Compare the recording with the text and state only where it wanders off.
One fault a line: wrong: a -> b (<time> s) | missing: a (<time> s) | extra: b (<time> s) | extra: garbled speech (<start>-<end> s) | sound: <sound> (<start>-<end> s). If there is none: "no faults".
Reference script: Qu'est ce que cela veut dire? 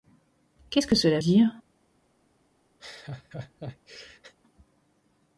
missing: veut (1.2 s)
sound: laugh (2.8-4.3 s)